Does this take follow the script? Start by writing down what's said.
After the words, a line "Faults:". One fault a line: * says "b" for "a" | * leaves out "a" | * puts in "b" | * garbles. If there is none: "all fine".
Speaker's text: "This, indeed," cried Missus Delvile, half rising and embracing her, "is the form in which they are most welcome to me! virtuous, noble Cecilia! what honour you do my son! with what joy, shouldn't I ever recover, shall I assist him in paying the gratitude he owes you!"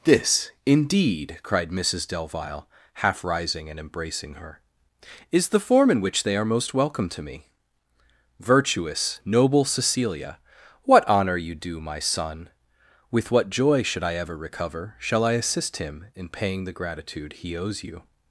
"This, indeed," cried Missus Delvile, half rising and embracing her, "is the form in which they are most welcome to me! virtuous, noble Cecilia! what honour you do my son! with what joy, should I ever recover, shall I assist him in paying the gratitude he owes you!"
Faults:
* says "should" for "shouldn't"